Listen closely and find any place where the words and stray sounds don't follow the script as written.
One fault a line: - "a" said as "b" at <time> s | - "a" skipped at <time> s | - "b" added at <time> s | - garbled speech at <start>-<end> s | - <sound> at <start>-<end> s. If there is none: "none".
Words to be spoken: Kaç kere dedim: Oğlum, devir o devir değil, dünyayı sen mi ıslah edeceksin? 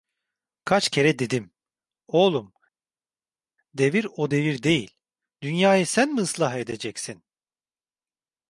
none